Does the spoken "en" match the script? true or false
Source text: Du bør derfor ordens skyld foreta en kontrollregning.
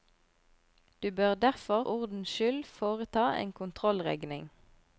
true